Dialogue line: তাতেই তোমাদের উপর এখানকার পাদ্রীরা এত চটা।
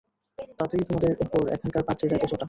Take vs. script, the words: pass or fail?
pass